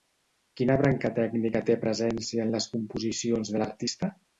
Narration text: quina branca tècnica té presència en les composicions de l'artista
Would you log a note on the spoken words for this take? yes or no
no